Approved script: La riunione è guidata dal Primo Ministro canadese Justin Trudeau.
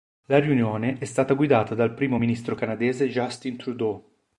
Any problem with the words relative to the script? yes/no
yes